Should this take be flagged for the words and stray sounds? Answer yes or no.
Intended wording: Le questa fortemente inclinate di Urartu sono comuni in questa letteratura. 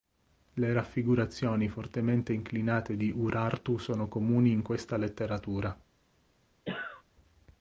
yes